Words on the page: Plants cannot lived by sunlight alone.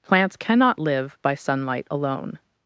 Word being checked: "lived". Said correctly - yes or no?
no